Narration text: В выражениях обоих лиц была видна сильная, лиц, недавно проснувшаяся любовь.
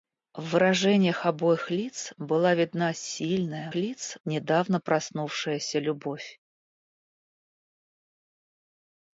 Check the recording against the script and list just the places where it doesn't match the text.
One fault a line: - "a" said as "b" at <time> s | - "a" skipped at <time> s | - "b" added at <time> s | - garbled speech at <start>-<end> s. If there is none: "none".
none